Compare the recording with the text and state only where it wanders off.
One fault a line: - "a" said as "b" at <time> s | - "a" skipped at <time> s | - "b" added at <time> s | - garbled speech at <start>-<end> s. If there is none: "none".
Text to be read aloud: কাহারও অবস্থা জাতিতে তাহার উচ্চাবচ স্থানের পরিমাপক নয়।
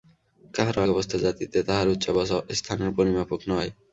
none